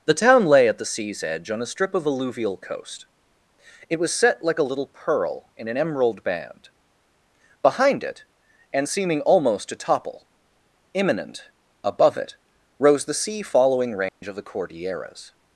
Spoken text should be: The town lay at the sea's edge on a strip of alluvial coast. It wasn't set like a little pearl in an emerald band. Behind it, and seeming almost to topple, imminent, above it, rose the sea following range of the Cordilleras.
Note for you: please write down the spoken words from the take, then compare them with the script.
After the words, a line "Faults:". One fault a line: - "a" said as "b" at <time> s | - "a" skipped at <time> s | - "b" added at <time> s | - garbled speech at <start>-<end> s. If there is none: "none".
The town lay at the sea's edge on a strip of alluvial coast. It was set like a little pearl in an emerald band. Behind it, and seeming almost to topple, imminent, above it, rose the sea following range of the Cordilleras.
Faults:
- "wasn't" said as "was" at 4.0 s